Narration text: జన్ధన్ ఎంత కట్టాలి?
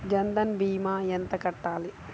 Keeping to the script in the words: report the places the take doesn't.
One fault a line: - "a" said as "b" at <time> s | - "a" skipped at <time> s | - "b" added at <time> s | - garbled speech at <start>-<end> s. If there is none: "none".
- "భీమా" added at 0.6 s